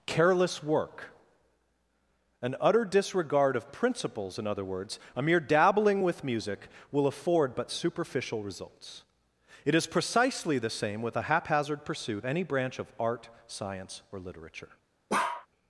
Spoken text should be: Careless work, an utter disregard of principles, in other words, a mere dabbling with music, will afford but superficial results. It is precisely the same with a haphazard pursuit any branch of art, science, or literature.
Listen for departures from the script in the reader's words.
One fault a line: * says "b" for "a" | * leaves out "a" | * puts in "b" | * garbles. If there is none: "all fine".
all fine